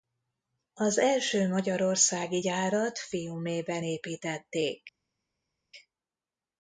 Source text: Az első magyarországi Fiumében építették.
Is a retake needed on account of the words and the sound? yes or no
yes